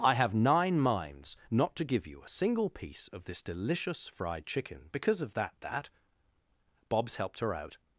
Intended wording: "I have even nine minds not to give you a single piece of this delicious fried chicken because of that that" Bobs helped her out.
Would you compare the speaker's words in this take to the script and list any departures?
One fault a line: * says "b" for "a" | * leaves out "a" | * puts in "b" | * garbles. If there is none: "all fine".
* leaves out "even"